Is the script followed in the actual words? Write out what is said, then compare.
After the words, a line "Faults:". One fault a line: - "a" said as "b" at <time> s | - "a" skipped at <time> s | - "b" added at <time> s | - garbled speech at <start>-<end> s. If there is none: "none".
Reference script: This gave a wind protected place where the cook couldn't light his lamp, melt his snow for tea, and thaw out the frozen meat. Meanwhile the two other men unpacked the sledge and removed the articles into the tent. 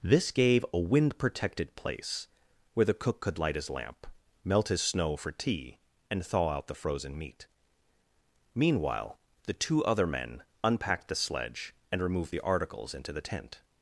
This gave a wind protected place where the cook could light his lamp, melt his snow for tea, and thaw out the frozen meat. Meanwhile the two other men unpacked the sledge and removed the articles into the tent.
Faults:
- "couldn't" said as "could" at 3.2 s